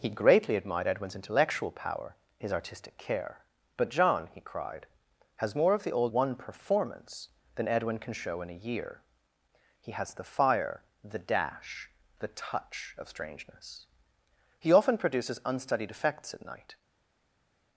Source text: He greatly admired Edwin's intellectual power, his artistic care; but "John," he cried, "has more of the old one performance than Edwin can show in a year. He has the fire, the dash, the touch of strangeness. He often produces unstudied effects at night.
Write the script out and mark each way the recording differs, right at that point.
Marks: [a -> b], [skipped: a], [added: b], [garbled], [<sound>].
He greatly admired Edwin's intellectual power, his artistic care; but "John," he cried, "has more of the old one performance than Edwin can show in a year. He has the fire, the dash, the touch of strangeness. He often produces unstudied effects at night.